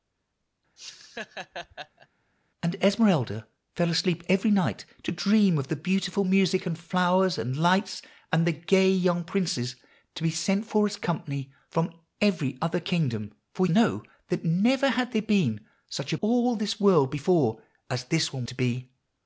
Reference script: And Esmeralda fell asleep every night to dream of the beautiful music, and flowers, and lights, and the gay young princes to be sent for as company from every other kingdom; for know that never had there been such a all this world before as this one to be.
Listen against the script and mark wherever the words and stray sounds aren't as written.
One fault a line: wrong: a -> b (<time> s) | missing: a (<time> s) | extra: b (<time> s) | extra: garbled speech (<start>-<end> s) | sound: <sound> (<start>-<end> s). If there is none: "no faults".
sound: laugh (0.8-2.1 s)